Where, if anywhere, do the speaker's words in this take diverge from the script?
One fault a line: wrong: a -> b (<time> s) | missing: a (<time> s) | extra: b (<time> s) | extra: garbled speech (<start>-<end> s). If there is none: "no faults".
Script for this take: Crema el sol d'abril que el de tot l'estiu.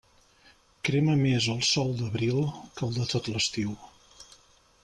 extra: més (1.2 s)